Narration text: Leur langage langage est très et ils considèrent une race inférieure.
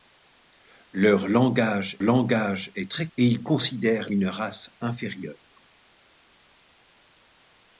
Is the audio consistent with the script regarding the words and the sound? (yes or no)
yes